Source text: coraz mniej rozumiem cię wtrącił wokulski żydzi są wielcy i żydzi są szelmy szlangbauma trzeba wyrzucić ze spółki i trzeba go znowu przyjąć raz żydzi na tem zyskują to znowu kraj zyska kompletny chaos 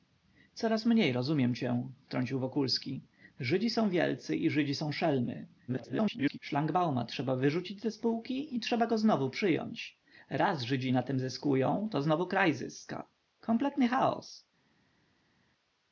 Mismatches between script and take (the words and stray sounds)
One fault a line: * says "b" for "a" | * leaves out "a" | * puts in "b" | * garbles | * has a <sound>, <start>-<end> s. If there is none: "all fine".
* garbles